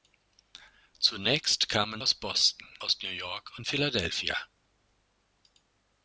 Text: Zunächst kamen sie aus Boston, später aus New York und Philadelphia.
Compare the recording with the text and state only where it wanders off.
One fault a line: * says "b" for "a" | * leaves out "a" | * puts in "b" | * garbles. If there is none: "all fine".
* leaves out "sie"
* leaves out "später"